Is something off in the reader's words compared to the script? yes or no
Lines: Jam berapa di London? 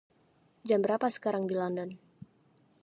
yes